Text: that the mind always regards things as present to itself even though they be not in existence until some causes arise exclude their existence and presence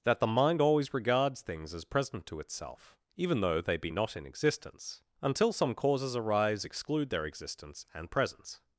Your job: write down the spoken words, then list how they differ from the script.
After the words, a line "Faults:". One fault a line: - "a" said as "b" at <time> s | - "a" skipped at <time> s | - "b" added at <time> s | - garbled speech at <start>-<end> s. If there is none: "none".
that the mind always regards things as present to itself even though they be not in existence until some causes arise exclude their existence and presence
Faults:
none